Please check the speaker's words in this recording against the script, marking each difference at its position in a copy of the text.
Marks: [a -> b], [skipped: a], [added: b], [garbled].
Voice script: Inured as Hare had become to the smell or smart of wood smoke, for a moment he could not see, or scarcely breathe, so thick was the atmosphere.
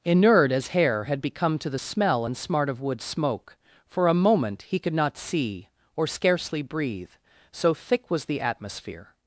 Inured as Hare had become to the smell [or -> and] smart of wood smoke, for a moment he could not see, or scarcely breathe, so thick was the atmosphere.